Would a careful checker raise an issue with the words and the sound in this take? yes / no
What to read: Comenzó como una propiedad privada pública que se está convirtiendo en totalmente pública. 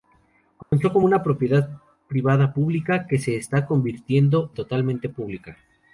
yes